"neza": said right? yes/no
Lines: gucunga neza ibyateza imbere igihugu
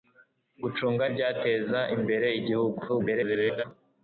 no